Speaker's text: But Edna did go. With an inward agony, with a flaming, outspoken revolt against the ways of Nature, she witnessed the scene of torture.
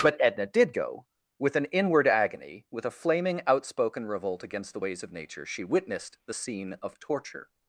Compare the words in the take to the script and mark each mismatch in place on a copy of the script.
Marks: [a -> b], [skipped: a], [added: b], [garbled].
But Edna did go. With an inward agony, with a flaming, outspoken revolt against the ways of Nature, she witnessed the scene of torture.